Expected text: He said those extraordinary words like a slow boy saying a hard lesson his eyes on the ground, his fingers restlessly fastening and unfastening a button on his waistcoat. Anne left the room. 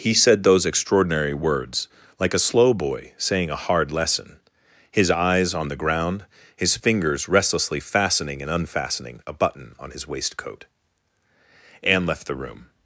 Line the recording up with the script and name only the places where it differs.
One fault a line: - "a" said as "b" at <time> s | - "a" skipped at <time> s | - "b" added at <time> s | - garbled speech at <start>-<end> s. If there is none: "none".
none